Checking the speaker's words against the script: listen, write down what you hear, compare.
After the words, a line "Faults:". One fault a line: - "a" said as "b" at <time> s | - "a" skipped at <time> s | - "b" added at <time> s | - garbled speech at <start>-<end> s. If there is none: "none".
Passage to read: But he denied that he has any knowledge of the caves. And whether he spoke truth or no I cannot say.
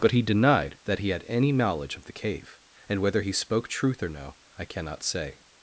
But he denied that he had any knowledge of the cave. And whether he spoke truth or no I cannot say.
Faults:
- "has" said as "had" at 1.1 s
- "caves" said as "cave" at 2.1 s